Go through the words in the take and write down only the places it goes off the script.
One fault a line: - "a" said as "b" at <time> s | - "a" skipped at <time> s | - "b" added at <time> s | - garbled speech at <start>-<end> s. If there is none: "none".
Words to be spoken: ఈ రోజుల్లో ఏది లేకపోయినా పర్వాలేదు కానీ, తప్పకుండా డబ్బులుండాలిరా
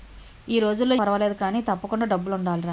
- "ఏది లేకపోయినా" skipped at 0.9 s